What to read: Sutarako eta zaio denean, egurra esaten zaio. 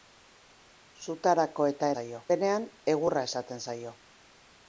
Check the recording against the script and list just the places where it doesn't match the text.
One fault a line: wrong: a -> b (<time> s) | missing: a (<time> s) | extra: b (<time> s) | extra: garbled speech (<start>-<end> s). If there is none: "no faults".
no faults